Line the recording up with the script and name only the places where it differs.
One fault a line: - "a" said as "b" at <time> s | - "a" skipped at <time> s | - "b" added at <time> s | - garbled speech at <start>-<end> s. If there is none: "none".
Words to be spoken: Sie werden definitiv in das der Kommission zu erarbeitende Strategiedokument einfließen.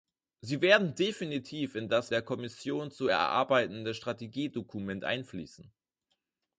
none